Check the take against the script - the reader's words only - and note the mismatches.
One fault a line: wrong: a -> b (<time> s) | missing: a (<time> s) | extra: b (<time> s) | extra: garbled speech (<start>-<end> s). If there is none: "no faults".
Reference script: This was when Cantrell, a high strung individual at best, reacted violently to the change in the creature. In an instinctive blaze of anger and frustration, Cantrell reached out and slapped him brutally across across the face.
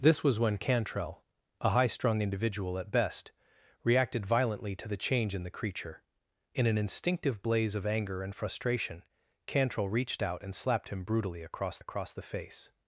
no faults